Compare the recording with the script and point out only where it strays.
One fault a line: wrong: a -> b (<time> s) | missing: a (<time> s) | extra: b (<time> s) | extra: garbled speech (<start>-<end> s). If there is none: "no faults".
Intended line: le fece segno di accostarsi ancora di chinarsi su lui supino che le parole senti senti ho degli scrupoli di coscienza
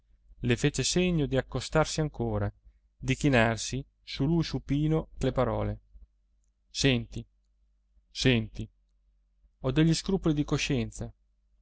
no faults